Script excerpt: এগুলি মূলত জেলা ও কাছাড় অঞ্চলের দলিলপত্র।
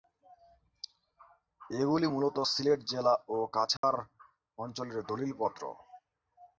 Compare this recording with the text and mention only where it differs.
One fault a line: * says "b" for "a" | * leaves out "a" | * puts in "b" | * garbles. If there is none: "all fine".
* puts in "সিলেট"